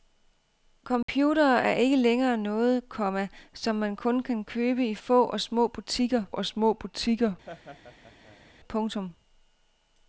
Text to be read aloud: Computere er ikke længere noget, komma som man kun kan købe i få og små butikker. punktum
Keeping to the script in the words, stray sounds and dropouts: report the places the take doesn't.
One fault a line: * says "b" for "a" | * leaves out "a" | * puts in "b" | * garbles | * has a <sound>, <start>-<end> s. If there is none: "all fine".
* has a dropout, 1.0-1.1 s
* puts in "og små butikker"
* has a laugh, 7.4-8.5 s